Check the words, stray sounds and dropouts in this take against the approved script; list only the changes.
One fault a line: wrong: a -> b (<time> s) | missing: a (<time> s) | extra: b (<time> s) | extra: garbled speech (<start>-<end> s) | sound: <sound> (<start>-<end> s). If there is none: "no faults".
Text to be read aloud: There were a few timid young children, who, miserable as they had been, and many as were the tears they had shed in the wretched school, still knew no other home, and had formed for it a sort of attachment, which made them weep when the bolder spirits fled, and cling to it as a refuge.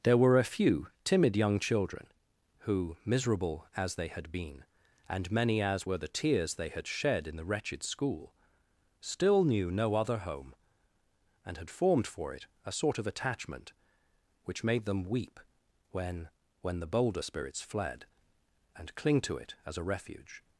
extra: when (16.6 s)